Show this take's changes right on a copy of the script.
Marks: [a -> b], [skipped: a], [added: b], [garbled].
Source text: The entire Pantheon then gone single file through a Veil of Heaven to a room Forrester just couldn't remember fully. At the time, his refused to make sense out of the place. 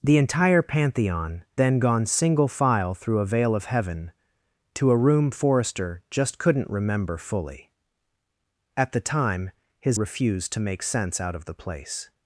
The entire Pantheon then gone single file through a Veil of Heaven to a room Forrester just couldn't remember fully. At the time, his refused to make sense out of the place.